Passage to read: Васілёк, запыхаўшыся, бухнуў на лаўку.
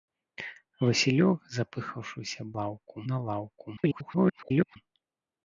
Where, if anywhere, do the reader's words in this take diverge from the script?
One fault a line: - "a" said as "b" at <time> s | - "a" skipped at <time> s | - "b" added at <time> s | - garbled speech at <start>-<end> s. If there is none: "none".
- "бухнуў" said as "лаўку" at 2.6 s
- garbled speech at 3.8-4.8 s